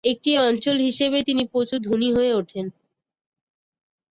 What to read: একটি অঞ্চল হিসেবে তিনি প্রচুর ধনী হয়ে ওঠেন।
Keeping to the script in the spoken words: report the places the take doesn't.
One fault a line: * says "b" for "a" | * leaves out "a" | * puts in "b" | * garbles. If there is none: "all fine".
all fine